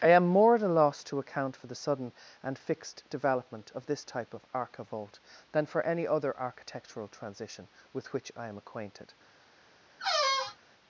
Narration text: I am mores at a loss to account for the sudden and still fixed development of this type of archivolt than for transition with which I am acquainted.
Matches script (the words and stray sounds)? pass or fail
fail